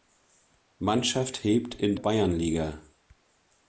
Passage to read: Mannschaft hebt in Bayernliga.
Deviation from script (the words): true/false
false